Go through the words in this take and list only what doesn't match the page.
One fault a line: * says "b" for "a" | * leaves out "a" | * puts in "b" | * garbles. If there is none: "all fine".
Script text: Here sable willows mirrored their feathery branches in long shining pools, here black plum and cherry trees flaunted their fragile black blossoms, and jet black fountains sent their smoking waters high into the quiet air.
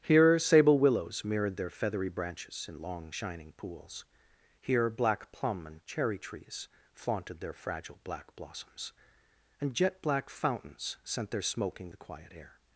* leaves out "waters high into"